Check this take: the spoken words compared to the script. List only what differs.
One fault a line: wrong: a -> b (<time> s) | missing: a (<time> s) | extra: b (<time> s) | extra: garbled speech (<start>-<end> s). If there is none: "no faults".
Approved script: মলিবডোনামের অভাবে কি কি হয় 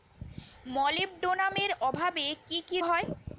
no faults